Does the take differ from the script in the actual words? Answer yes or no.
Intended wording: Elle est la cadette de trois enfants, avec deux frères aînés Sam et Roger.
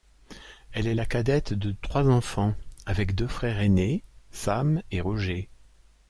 no